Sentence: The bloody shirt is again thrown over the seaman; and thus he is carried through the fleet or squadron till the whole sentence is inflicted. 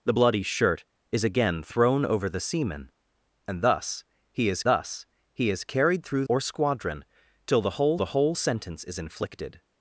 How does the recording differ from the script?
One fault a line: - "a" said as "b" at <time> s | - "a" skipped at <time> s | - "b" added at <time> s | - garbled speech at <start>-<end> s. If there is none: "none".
- "thus he is" added at 4.6 s
- "the fleet" skipped at 6.2 s
- "the whole" added at 8.0 s